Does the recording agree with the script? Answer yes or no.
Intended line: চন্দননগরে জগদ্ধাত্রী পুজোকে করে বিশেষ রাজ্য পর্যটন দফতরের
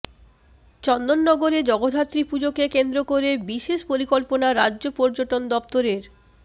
no